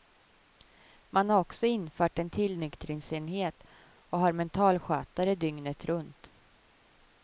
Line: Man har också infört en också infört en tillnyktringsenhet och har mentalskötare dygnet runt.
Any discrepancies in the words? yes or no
yes